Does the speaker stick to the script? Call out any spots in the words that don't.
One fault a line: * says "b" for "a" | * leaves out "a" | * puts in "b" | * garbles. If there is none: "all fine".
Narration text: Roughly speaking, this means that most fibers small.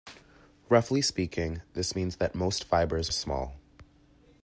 all fine